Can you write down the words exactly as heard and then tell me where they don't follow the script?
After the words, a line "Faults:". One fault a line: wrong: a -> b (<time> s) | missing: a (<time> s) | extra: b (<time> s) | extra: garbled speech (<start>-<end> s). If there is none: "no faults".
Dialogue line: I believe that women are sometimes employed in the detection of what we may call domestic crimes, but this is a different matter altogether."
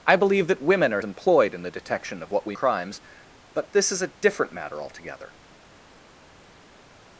I believe that women are employed in the detection of what we crimes, but this is a different matter altogether."
Faults:
missing: sometimes (1.0 s)
missing: may call domestic (2.6 s)